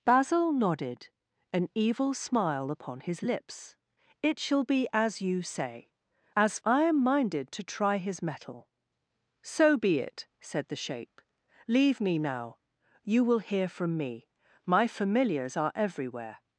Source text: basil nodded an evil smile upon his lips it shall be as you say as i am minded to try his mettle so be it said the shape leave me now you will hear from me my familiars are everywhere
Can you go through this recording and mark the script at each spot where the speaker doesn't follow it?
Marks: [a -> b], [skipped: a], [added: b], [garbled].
basil nodded an evil smile upon his lips it shall be as you say as i am minded to try his mettle so be it said the shape leave me now you will hear from me my familiars are everywhere